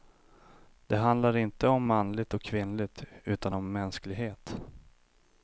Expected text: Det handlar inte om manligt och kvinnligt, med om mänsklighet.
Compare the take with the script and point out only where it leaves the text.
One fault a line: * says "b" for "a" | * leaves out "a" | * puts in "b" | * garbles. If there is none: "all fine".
* says "utan" for "med"